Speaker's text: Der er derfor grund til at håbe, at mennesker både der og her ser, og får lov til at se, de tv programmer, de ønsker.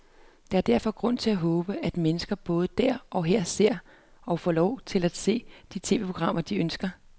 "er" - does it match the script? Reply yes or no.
yes